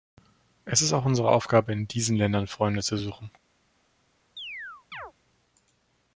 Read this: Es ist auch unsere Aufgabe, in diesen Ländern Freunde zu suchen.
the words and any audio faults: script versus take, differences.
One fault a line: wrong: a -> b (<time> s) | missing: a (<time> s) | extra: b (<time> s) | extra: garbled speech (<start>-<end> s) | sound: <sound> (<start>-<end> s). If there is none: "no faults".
sound: chirp (4.4-5.1 s)